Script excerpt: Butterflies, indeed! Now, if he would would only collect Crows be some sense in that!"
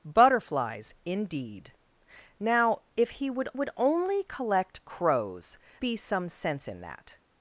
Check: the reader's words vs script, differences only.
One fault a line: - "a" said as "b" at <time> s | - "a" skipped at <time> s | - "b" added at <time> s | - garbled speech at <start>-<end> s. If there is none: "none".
none